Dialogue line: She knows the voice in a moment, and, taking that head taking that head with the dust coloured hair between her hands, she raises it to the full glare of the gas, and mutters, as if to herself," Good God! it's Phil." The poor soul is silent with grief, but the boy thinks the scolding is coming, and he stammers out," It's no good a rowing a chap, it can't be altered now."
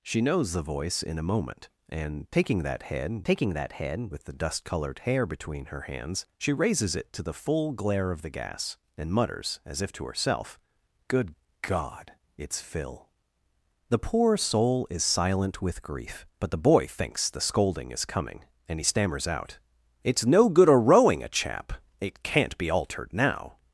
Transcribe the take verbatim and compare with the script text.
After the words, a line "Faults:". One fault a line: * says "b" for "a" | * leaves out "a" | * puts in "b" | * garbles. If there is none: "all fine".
She knows the voice in a moment, and, taking that head taking that head with the dust coloured hair between her hands, she raises it to the full glare of the gas, and mutters, as if to herself," Good God! it's Phil." The poor soul is silent with grief, but the boy thinks the scolding is coming, and he stammers out," It's no good a rowing a chap, it can't be altered now."
Faults:
all fine